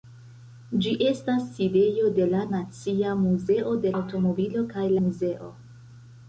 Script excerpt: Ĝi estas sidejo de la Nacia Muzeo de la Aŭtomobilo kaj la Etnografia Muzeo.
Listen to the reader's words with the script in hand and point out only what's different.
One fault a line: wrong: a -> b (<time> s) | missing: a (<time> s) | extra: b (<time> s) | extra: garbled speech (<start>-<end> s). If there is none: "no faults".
missing: la (3.9 s)
missing: la Etnografia (4.9 s)